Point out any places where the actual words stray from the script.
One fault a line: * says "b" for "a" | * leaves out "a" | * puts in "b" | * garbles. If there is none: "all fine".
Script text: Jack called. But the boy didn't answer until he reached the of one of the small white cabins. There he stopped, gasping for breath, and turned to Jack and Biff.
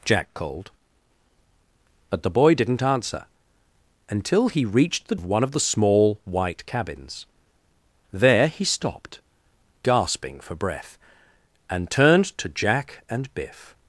all fine